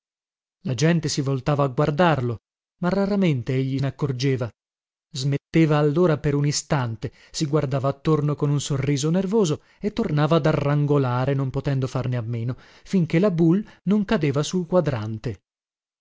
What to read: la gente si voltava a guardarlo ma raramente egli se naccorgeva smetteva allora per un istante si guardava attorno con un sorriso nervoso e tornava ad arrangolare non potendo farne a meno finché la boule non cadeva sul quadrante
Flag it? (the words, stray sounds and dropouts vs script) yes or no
yes